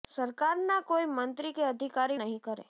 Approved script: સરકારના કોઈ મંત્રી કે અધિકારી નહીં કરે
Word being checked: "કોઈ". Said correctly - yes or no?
yes